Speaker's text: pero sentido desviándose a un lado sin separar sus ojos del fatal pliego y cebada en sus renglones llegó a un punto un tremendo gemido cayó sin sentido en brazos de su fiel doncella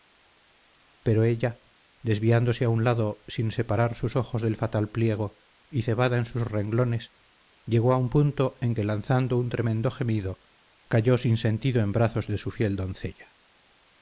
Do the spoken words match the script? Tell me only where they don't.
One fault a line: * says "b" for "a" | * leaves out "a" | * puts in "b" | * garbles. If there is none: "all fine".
* says "ella" for "sentido"
* puts in "en que lanzando"